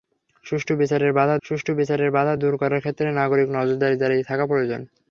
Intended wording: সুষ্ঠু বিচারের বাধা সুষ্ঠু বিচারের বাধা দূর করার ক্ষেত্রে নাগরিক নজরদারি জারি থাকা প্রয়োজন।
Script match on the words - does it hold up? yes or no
yes